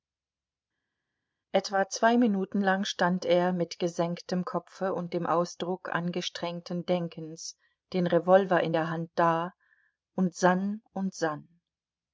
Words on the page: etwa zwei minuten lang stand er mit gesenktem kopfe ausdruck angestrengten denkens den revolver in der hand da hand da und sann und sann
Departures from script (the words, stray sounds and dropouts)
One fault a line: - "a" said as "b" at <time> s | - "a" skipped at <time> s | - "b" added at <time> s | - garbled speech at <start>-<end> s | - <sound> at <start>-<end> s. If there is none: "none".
- "und dem" added at 4.9 s
- "hand da" skipped at 9.5 s